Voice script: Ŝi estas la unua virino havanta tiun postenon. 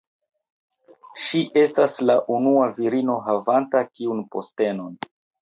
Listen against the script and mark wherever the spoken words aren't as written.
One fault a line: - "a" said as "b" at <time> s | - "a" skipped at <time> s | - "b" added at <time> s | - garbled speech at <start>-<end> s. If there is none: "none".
none